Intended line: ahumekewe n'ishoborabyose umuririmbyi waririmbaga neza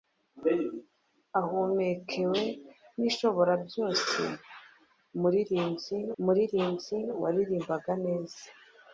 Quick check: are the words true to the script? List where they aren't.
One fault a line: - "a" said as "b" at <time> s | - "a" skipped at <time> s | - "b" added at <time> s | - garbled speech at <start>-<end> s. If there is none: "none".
- "umuririmbyi" added at 6.2 s